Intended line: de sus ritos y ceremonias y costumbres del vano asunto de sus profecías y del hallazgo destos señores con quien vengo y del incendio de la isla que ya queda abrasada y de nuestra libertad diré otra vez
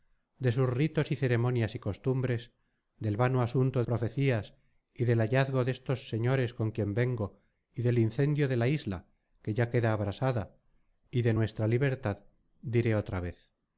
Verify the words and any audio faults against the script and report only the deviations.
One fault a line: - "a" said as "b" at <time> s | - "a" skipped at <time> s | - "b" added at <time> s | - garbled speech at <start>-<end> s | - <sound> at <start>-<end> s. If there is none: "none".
- "de sus" skipped at 3.8 s